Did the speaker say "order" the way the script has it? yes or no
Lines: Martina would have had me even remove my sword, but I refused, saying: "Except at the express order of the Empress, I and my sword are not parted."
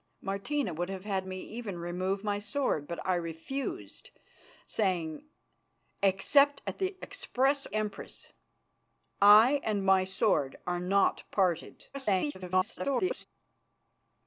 no